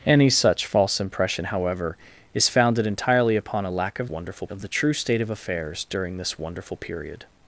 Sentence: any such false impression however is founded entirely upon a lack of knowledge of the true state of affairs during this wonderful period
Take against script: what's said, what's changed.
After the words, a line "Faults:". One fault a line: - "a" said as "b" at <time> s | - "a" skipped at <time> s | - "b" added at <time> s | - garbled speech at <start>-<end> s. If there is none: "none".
any such false impression however is founded entirely upon a lack of wonderful of the true state of affairs during this wonderful period
Faults:
- "knowledge" said as "wonderful" at 4.1 s